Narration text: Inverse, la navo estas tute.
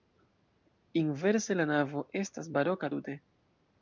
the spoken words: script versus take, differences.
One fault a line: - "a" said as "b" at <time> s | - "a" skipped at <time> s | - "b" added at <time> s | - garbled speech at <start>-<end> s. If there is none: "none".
- "baroka" added at 2.6 s